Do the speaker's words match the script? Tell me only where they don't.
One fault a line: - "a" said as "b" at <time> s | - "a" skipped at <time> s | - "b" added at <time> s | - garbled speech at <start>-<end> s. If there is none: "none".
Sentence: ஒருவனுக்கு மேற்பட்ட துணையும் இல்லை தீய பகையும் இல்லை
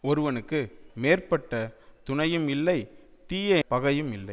none